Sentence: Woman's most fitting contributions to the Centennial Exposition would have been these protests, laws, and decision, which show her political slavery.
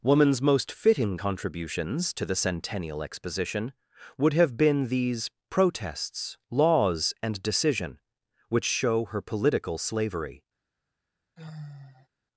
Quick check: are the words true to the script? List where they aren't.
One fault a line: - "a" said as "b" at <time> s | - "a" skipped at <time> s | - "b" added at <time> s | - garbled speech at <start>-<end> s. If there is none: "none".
none